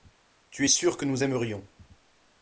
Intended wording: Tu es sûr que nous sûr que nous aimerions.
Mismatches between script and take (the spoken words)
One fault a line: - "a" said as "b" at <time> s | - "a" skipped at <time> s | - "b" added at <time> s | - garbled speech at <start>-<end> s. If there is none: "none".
- "sûr que nous" skipped at 1.2 s